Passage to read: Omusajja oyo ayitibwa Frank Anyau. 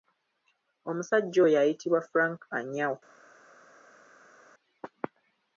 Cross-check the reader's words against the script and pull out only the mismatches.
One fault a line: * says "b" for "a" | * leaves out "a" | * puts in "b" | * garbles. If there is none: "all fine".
all fine